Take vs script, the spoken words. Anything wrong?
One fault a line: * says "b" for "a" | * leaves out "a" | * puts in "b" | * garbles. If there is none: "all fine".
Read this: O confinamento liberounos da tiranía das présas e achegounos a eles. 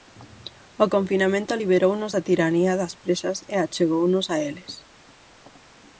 all fine